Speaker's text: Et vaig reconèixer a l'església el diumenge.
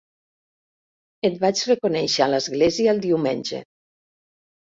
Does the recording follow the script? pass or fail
pass